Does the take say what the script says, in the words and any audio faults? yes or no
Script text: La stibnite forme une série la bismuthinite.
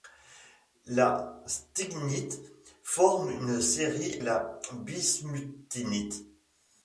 yes